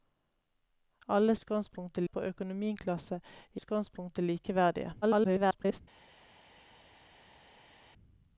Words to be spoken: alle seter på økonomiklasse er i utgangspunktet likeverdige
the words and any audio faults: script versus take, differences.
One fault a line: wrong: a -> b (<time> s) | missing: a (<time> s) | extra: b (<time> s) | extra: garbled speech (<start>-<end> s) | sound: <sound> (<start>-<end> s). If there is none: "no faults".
wrong: seter -> utgangspunktet (1.3 s)
missing: i (3.6 s)
extra: garbled speech (5.0-5.8 s)